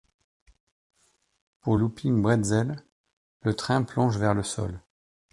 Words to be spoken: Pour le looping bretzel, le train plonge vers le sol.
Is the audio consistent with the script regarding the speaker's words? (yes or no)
no